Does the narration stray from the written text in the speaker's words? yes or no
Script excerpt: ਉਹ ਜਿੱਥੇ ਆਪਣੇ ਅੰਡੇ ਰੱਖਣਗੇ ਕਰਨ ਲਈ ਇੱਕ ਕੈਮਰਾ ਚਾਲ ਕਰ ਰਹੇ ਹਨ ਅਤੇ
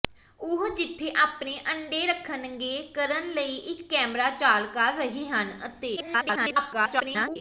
yes